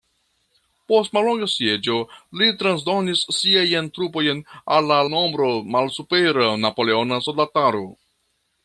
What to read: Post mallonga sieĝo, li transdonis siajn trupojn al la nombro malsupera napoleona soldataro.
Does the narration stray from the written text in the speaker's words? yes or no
no